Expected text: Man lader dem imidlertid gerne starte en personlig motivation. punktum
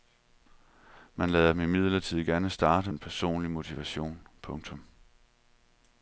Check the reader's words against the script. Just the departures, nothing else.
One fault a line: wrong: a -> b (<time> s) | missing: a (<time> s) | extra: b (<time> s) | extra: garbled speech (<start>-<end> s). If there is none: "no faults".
no faults